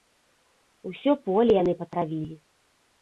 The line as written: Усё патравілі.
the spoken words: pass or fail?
fail